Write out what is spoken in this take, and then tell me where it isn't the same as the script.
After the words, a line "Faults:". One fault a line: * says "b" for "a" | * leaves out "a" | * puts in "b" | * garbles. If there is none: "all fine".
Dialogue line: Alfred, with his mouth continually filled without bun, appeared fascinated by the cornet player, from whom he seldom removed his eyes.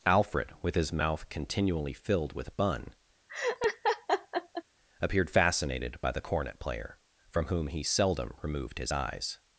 Alfred, with his mouth continually filled with bun, appeared fascinated by the cornet player, from whom he seldom removed his eyes.
Faults:
* says "with" for "without"